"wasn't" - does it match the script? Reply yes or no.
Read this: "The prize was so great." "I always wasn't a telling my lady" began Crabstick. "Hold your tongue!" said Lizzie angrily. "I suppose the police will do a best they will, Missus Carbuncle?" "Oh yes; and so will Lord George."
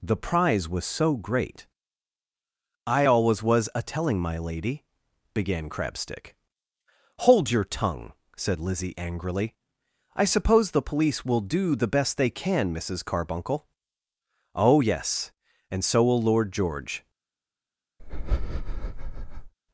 no